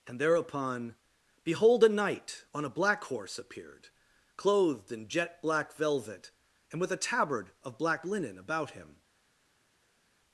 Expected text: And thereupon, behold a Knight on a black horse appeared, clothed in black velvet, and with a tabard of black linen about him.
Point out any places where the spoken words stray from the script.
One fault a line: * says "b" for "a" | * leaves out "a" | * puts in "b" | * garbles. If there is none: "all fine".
* puts in "jet"